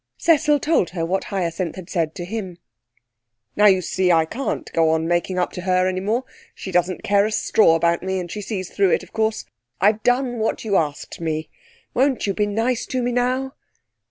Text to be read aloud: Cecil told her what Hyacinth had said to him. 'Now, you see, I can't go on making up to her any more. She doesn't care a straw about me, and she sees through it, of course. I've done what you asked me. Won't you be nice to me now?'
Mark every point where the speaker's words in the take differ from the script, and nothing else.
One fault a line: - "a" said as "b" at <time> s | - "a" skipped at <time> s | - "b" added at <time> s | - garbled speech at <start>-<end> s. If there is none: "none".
none